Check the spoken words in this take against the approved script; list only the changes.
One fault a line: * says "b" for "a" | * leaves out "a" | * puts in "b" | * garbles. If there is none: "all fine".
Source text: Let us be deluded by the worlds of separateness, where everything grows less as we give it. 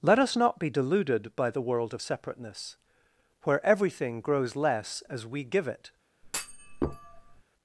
* puts in "not"
* says "world" for "worlds"